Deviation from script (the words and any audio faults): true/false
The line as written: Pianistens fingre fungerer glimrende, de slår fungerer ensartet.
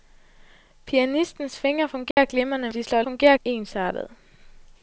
true